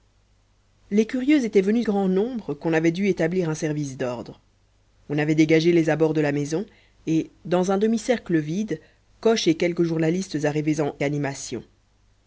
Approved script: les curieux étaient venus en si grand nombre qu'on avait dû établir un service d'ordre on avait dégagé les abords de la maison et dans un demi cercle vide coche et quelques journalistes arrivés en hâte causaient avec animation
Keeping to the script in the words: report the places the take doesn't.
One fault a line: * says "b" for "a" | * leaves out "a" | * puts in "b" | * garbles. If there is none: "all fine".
* leaves out "en si"
* leaves out "hâte causaient avec"